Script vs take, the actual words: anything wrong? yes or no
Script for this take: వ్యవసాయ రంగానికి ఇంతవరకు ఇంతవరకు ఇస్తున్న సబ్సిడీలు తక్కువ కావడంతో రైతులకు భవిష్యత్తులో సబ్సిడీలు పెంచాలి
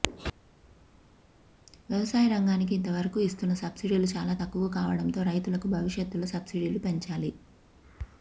yes